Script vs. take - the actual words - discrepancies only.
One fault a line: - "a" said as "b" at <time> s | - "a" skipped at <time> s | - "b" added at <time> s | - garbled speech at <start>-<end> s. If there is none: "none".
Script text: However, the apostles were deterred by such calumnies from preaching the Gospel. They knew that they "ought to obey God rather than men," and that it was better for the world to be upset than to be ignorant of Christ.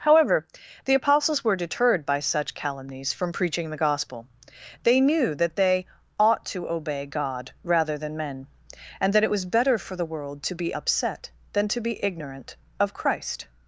none